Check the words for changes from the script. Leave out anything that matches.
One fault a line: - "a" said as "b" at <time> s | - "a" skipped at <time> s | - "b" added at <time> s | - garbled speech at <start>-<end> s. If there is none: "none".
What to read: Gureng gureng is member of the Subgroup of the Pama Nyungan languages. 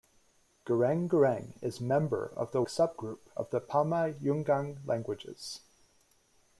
none